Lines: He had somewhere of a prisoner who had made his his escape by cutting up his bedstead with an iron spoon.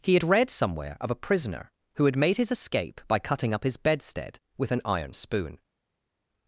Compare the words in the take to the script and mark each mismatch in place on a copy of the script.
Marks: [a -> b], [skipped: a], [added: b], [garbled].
He had [added: read] somewhere of a prisoner who had made his [skipped: his] escape by cutting up his bedstead with an iron spoon.